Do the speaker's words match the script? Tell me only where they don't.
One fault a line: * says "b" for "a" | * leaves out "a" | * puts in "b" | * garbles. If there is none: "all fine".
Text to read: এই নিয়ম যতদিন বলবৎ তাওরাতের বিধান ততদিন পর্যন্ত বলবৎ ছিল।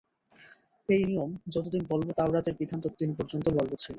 all fine